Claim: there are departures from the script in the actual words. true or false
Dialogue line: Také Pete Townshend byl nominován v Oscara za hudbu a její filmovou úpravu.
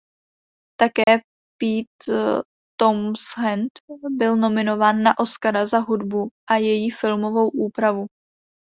true